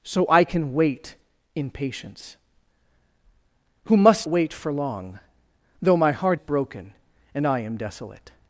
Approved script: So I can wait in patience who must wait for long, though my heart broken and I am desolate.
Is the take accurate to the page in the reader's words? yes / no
yes